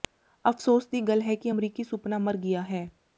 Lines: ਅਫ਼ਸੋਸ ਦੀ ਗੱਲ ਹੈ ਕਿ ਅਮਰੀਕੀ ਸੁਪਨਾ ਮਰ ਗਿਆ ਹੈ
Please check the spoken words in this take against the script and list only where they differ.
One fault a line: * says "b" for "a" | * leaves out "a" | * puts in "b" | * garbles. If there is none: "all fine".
all fine